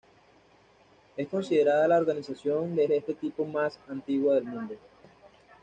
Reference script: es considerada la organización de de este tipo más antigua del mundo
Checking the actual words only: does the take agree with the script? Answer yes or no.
yes